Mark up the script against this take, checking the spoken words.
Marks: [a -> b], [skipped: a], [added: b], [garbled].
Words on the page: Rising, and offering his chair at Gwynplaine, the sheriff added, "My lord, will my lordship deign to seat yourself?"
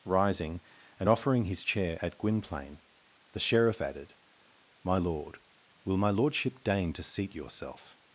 Rising, and offering his chair at Gwynplaine, the sheriff added, "My lord, will my lordship deign to seat yourself?"